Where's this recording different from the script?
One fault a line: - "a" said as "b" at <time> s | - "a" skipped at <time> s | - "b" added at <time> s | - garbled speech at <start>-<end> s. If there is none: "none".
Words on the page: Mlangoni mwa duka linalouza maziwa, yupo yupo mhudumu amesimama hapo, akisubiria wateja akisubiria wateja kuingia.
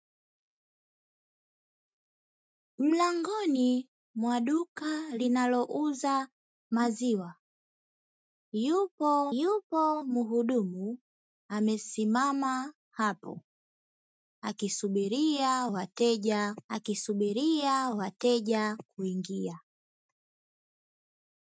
none